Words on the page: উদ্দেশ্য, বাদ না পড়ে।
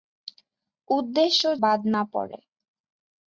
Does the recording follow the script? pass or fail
pass